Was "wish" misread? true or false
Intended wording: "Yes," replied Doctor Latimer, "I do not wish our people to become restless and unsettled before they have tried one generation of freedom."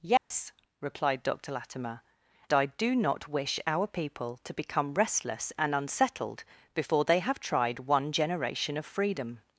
false